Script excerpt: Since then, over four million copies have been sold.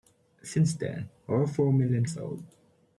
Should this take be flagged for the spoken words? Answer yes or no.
yes